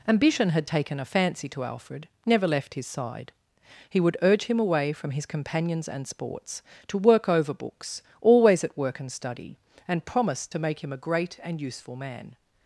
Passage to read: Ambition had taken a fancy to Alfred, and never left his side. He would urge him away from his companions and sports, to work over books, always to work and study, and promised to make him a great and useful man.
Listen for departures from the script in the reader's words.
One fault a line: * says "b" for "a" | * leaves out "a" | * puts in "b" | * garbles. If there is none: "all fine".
* leaves out "and"
* says "at" for "to"